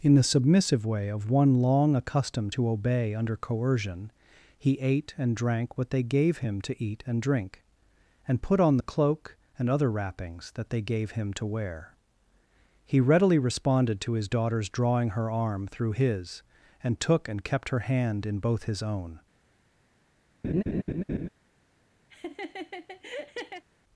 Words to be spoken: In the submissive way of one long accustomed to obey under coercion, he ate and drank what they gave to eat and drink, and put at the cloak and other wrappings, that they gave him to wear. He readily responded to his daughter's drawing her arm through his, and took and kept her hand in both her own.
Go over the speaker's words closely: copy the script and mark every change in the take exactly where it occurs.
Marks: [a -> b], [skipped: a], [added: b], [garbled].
In the submissive way of one long accustomed to obey under coercion, he ate and drank what they gave [added: him] to eat and drink, and put [at -> on] the cloak and other wrappings, that they gave him to wear. He readily responded to his daughter's drawing her arm through his, and took and kept her hand in both [her -> his] own.